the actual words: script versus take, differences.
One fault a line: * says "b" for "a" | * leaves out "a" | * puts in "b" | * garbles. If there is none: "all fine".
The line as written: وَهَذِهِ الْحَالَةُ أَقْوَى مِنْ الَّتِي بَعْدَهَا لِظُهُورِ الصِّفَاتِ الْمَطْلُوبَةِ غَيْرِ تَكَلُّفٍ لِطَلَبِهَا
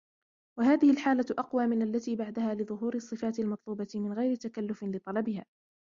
* puts in "مِنْ"